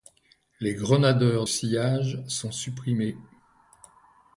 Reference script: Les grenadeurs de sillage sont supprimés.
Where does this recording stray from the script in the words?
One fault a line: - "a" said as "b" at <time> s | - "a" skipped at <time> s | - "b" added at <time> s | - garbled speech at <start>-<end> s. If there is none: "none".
- "de" skipped at 1.4 s